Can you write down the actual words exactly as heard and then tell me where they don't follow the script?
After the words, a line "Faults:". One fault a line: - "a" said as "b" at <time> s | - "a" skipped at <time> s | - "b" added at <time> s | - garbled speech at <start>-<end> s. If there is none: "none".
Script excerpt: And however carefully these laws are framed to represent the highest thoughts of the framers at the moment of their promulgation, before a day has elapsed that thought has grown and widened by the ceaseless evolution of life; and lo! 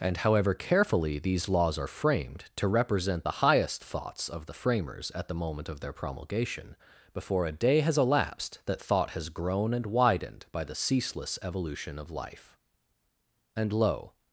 And however carefully these laws are framed to represent the highest thoughts of the framers at the moment of their promulgation, before a day has elapsed that thought has grown and widened by the ceaseless evolution of life; and lo!
Faults:
none